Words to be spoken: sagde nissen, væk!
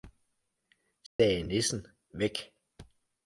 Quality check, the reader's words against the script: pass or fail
pass